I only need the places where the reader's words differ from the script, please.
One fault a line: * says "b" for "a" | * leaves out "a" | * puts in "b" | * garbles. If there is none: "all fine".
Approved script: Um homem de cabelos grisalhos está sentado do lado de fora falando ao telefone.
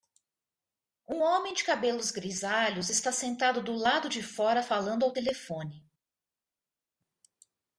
all fine